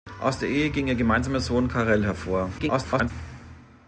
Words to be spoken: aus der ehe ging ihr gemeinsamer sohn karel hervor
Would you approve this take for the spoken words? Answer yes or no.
no